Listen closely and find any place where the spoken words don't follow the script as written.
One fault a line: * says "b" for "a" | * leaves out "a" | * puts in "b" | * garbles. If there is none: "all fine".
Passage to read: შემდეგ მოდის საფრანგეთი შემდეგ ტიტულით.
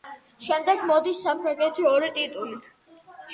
* says "ორი" for "შემდეგ"